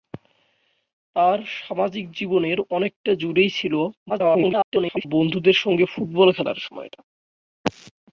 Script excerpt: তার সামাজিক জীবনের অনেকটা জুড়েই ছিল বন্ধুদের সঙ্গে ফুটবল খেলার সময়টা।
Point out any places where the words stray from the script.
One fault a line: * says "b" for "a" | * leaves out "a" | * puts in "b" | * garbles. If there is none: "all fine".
* garbles